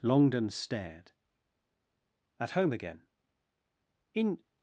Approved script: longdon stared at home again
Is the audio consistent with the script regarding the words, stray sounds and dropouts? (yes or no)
no